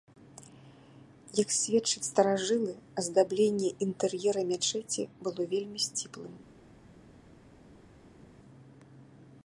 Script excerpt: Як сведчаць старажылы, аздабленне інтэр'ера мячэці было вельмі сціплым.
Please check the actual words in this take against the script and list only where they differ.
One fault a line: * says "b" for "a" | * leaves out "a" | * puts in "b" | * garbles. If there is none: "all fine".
all fine